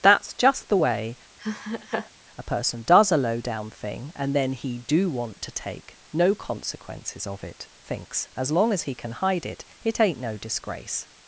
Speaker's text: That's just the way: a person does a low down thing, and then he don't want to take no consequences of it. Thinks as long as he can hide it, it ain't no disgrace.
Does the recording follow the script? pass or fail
fail